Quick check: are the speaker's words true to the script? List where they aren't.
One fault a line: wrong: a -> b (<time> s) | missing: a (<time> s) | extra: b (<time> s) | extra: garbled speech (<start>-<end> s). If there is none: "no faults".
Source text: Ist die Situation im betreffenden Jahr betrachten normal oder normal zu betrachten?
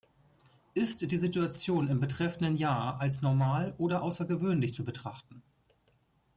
wrong: betrachten -> als (3.0 s)
wrong: normal -> außergewöhnlich (4.0 s)